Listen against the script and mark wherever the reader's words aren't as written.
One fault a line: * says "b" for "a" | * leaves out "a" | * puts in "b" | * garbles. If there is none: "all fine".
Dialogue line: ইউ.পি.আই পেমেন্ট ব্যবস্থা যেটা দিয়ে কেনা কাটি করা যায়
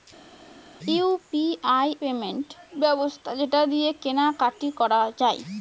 all fine